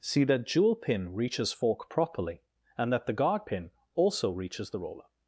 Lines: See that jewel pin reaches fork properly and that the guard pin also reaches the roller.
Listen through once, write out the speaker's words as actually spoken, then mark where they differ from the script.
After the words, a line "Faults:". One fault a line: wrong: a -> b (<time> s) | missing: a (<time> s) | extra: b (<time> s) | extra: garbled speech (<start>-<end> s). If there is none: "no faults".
See that jewel pin reaches fork properly and that the guard pin also reaches the roller.
Faults:
no faults